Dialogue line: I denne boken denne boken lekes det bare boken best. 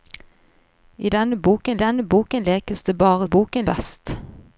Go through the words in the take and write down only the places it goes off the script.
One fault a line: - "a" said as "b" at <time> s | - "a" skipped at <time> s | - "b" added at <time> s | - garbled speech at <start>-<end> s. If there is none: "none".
none